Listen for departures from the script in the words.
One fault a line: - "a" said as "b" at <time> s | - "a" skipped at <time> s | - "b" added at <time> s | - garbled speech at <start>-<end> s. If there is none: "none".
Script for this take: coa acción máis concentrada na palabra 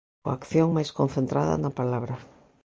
none